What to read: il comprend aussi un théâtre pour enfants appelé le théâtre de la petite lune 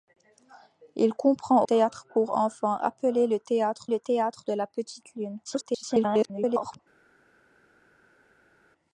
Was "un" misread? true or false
true